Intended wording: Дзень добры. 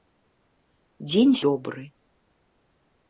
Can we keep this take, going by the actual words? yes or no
yes